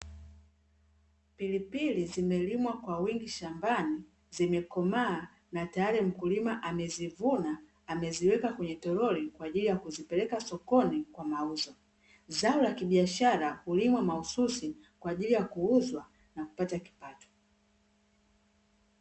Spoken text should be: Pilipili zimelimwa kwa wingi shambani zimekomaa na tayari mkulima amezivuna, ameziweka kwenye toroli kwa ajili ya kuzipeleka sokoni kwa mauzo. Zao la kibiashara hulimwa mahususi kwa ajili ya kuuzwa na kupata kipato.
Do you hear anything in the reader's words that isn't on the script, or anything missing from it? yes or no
no